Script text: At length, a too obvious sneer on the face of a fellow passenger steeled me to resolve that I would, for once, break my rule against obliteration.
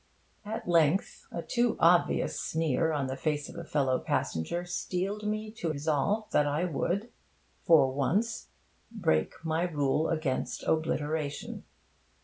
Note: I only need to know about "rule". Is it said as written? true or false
true